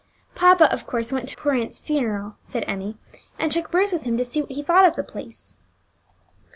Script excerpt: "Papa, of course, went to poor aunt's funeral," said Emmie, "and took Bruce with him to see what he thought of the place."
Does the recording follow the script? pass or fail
pass